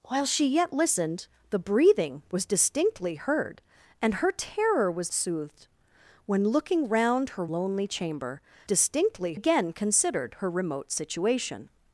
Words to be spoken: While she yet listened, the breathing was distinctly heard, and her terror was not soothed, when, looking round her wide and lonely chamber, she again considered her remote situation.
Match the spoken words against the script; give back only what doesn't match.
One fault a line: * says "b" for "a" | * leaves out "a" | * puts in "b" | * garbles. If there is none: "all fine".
* leaves out "not"
* leaves out "wide and"
* says "distinctly" for "she"